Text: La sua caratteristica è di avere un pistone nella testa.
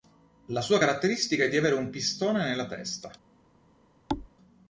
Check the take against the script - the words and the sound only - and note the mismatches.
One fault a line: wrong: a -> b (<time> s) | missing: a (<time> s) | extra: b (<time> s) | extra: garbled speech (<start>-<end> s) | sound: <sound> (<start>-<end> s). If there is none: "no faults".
sound: thud (4.1-4.3 s)